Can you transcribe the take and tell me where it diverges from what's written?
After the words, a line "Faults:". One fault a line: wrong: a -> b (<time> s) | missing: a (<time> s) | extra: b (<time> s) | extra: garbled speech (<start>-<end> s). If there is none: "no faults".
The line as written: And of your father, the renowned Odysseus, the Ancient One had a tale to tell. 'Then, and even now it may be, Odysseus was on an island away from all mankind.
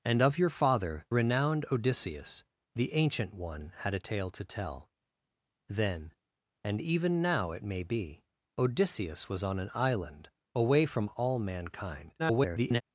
And of your father, renowned Odysseus, the Ancient One had a tale to tell. 'Then, and even now it may be, Odysseus was on an island away from all mankind. [garbled]
Faults:
missing: the (1.1 s)
extra: garbled speech (12.2-12.8 s)